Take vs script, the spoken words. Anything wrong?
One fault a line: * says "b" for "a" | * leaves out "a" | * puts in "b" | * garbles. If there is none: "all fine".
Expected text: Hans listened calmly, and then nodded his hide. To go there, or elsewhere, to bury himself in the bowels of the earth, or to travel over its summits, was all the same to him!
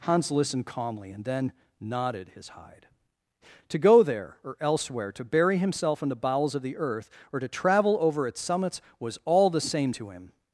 all fine